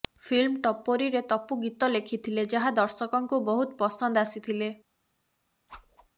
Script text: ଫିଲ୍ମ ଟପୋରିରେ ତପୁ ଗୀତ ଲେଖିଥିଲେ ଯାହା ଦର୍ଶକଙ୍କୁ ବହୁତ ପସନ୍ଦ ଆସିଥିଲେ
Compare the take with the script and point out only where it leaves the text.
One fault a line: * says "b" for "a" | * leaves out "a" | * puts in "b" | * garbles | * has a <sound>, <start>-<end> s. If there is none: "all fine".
* has a whoosh, 5.7-6.1 s